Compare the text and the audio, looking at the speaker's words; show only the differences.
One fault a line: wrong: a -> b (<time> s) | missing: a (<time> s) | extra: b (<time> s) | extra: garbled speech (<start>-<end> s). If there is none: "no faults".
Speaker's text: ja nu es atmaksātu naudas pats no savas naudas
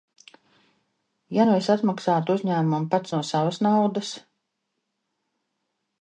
wrong: naudas -> uzņēmumam (2.4 s)